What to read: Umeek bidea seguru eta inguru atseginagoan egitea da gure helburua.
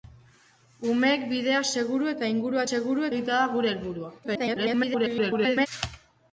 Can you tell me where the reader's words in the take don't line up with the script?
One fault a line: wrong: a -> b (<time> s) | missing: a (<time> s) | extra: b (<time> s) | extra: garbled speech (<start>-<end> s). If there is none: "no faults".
wrong: atseginagoan -> seguru (2.7 s)
extra: garbled speech (4.2-5.7 s)